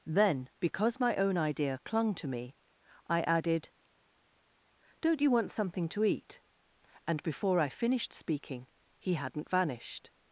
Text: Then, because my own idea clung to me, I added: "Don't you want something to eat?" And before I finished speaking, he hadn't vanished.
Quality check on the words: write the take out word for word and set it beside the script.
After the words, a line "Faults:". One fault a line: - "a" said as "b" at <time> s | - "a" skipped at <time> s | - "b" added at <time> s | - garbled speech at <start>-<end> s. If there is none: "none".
Then, because my own idea clung to me, I added: "Don't you want something to eat?" And before I finished speaking, he hadn't vanished.
Faults:
none